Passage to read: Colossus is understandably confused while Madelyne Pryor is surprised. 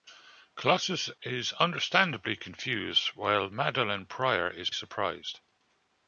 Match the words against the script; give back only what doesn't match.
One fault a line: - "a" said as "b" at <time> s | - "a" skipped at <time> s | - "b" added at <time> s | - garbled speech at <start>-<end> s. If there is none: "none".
none